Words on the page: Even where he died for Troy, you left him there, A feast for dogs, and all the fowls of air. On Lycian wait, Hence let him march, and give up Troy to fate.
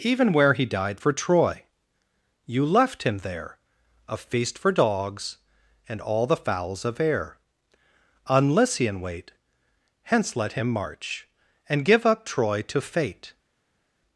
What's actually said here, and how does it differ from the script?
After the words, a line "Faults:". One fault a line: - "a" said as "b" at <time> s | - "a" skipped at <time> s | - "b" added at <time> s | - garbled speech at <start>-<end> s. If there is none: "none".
Even where he died for Troy, you left him there, A feast for dogs, and all the fowls of air. On Lycian wait, Hence let him march, and give up Troy to fate.
Faults:
none